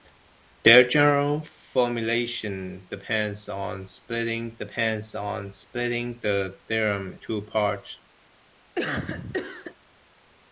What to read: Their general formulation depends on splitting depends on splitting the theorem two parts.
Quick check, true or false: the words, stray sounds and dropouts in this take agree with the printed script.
false